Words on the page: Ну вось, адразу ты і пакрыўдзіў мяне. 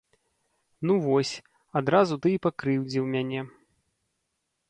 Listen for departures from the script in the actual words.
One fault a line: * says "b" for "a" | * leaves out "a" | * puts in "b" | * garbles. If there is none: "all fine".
all fine